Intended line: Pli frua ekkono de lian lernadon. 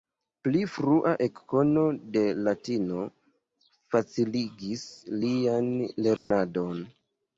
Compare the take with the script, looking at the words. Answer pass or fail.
fail